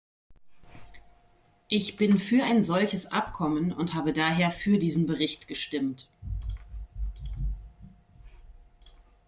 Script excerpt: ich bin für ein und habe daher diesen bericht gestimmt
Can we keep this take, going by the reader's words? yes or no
no